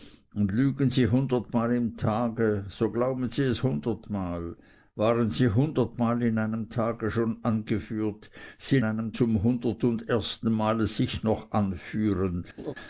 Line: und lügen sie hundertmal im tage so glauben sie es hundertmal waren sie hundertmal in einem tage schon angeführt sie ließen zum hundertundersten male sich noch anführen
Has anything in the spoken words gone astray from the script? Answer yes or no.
yes